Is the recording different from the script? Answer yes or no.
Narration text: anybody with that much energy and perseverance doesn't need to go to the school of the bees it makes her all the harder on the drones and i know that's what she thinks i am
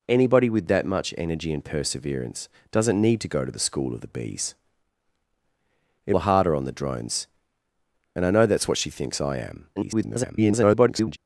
yes